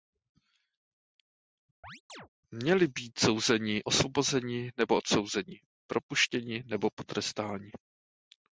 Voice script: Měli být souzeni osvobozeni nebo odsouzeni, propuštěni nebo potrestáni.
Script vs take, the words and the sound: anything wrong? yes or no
yes